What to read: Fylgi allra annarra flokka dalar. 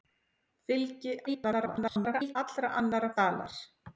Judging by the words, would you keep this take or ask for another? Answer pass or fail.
fail